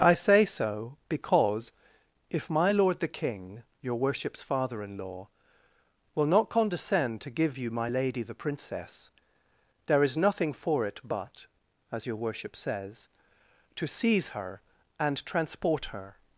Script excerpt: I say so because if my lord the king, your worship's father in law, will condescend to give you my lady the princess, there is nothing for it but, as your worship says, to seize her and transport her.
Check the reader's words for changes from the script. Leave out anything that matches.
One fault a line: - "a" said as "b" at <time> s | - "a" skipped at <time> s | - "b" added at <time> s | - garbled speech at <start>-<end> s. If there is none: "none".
- "not" added at 6.2 s